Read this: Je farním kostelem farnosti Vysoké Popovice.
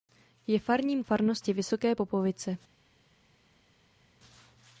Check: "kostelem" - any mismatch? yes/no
yes